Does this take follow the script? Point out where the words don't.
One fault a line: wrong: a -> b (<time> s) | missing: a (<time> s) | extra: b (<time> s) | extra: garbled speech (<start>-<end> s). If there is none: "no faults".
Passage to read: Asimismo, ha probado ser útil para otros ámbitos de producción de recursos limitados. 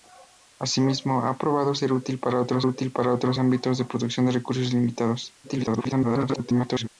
extra: útil para otros (2.7 s)
extra: garbled speech (5.4-6.9 s)